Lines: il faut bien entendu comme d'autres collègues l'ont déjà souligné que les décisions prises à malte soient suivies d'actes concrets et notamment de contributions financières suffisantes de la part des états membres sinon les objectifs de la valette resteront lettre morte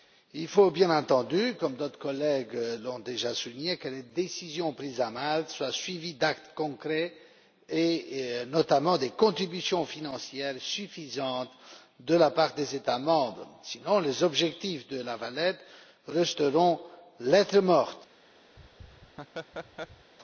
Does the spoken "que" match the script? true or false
true